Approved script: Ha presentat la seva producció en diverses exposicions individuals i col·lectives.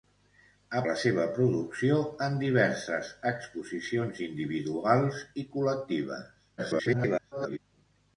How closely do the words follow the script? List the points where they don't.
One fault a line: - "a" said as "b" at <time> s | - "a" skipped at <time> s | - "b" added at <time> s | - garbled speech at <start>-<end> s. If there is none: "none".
- "presentat" skipped at 0.8 s
- garbled speech at 6.6-7.6 s